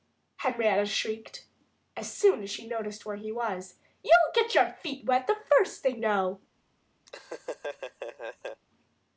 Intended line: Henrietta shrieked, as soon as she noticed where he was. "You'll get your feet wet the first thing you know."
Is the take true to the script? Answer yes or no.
no